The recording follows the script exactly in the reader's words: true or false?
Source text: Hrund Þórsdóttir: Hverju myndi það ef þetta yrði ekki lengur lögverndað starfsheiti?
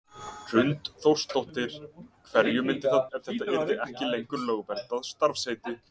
true